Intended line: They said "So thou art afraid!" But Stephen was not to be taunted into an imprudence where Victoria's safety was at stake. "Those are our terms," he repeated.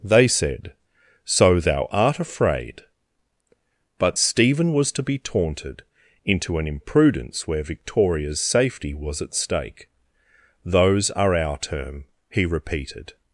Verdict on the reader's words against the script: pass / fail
fail